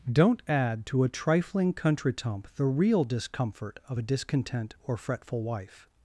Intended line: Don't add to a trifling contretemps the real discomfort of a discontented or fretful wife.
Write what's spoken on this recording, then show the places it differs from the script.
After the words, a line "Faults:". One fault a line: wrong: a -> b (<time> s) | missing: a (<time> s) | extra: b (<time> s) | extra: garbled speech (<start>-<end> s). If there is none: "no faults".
Don't add to a trifling contretemps the real discomfort of a discontent or fretful wife.
Faults:
wrong: discontented -> discontent (4.0 s)